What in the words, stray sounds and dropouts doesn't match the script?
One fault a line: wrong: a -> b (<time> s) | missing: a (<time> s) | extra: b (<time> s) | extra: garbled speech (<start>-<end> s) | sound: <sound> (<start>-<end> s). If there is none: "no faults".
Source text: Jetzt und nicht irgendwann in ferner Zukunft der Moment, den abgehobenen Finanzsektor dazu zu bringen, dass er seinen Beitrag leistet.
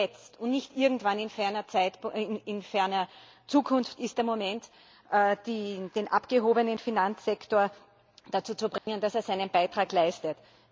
extra: ist (4.0 s)
sound: dropout (8.8-8.9 s)